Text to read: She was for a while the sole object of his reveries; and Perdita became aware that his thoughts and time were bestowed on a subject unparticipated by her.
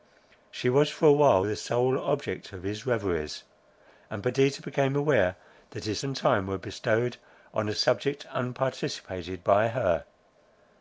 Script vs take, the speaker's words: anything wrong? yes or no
yes